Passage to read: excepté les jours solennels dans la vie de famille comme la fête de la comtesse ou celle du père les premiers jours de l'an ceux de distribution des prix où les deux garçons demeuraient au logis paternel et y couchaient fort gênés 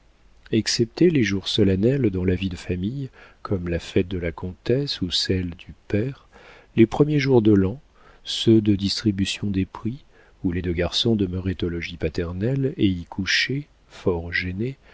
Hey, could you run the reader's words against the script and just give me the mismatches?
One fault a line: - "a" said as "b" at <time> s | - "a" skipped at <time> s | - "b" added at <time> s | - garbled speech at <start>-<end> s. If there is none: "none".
none